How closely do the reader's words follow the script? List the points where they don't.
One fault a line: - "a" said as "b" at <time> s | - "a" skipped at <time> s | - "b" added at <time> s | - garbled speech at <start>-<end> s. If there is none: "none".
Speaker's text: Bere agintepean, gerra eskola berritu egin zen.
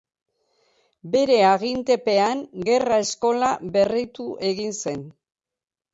none